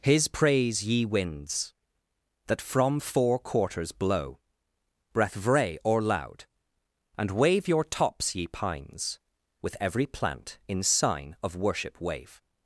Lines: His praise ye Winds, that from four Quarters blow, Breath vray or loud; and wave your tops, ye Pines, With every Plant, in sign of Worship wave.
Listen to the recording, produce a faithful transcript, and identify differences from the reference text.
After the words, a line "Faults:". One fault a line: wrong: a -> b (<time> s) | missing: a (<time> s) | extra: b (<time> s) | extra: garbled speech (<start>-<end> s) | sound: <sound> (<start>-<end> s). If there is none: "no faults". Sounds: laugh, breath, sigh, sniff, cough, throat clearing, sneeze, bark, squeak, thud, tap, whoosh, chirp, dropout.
His praise ye Winds, that from four Quarters blow, Breath vray or loud; and wave your tops, ye Pines, With every Plant, in sign of Worship wave.
Faults:
no faults